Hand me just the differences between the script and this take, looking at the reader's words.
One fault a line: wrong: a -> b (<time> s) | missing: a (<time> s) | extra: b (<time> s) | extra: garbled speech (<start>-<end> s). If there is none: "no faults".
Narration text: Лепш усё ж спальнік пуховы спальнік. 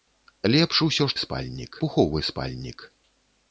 no faults